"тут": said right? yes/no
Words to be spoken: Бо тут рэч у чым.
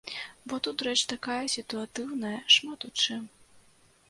yes